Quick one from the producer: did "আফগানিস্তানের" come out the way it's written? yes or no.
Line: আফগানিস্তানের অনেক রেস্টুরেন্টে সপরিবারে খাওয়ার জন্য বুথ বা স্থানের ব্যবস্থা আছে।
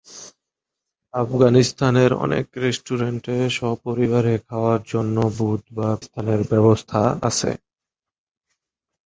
yes